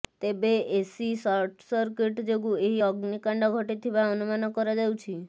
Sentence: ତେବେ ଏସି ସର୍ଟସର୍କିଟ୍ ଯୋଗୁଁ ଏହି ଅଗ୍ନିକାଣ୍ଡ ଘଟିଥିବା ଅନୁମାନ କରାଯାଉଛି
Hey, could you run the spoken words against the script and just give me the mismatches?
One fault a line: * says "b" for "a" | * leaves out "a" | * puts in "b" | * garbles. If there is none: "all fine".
all fine